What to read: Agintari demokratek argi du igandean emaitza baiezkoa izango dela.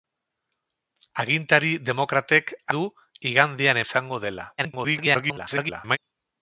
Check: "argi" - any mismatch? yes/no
yes